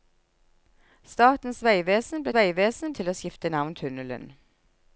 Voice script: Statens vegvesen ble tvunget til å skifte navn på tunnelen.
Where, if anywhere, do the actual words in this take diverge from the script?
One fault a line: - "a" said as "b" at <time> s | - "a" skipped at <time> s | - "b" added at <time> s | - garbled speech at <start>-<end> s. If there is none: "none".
- "tvunget" said as "vegvesen" at 2.3 s
- "på" skipped at 3.7 s